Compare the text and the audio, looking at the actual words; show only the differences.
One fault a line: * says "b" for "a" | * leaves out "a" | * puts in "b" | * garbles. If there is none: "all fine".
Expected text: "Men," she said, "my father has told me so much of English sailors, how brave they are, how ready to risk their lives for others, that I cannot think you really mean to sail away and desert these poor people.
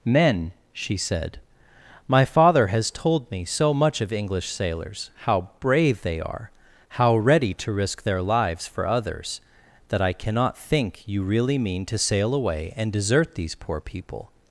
all fine